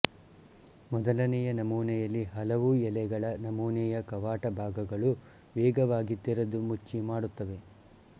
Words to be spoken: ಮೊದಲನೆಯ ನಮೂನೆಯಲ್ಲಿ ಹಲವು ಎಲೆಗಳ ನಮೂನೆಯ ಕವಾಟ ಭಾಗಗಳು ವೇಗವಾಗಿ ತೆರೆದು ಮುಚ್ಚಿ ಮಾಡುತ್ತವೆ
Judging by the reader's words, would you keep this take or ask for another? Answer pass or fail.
pass